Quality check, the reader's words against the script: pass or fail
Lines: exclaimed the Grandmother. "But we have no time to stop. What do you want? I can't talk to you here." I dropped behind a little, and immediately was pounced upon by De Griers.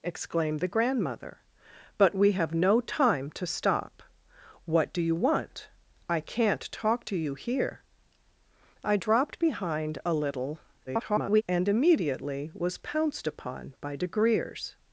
fail